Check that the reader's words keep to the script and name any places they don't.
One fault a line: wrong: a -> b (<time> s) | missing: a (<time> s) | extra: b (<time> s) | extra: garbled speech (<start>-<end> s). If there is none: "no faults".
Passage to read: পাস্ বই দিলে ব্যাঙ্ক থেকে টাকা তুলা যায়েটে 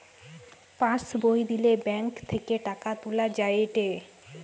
no faults